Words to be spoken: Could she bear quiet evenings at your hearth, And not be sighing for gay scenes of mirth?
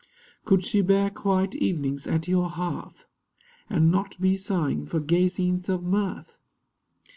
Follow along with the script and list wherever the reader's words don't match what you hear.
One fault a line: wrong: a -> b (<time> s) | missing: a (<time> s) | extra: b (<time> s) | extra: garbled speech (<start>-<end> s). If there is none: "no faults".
no faults